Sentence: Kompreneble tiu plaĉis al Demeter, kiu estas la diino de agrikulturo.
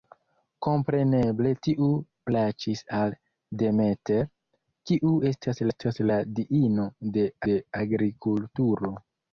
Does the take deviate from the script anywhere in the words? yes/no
yes